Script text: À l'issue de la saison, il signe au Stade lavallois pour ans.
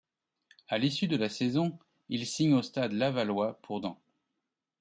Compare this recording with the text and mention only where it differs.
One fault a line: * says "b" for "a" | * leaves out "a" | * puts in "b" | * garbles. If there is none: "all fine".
all fine